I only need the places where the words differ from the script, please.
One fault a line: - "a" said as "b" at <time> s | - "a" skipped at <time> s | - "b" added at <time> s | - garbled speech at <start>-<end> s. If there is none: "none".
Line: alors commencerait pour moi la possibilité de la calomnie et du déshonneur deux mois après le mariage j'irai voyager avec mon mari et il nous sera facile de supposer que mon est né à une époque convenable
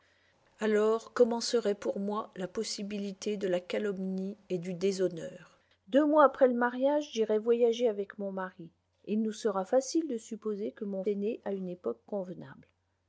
none